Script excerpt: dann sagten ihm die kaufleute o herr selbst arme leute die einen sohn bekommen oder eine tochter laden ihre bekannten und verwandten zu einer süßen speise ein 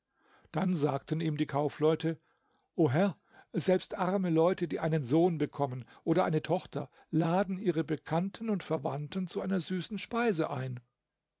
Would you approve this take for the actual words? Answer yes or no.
yes